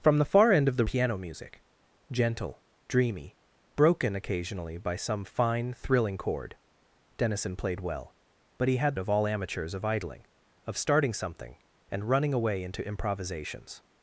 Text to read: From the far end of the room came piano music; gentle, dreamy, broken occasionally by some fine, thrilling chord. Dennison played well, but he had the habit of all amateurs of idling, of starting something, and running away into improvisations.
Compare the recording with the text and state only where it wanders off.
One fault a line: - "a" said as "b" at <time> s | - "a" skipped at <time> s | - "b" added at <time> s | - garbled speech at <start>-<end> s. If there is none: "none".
- "room came" skipped at 0.8 s
- "the habit" skipped at 9.0 s